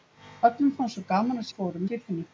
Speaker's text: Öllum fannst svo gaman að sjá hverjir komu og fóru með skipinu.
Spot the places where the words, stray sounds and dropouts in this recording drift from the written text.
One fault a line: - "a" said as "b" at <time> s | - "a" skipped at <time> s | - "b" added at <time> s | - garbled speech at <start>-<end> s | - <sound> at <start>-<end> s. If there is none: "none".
- "sjá hverjir komu" skipped at 1.5 s
- "með" skipped at 1.8 s